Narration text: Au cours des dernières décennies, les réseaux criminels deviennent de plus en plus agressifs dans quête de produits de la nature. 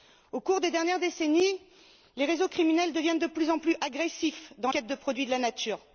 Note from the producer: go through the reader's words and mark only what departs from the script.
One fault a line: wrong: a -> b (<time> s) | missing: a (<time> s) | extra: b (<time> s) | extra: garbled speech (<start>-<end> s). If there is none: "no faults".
no faults